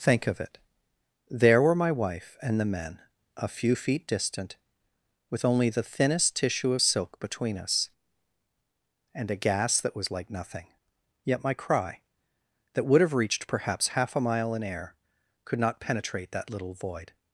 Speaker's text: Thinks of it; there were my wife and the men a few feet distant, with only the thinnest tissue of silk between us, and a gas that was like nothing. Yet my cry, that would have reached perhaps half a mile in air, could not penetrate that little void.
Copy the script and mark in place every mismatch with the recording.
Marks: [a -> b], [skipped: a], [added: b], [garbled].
[Thinks -> Think] of it; there were my wife and the men a few feet distant, with only the thinnest tissue of silk between us, and a gas that was like nothing. Yet my cry, that would have reached perhaps half a mile in air, could not penetrate that little void.